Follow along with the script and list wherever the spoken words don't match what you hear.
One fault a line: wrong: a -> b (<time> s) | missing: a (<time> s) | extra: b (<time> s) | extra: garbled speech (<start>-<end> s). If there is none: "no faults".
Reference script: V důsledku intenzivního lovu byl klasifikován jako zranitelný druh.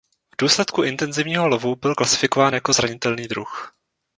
no faults